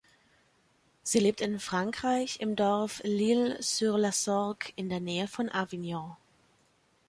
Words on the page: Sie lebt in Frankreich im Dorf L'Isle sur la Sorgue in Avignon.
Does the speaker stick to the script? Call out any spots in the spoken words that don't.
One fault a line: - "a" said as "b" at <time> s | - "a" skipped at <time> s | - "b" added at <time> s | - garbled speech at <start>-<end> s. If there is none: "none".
- "der Nähe von" added at 4.9 s